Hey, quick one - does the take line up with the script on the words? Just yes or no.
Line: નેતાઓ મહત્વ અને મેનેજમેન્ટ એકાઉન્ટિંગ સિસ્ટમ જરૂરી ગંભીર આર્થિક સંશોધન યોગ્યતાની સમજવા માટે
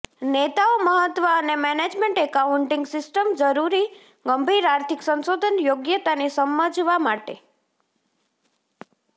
yes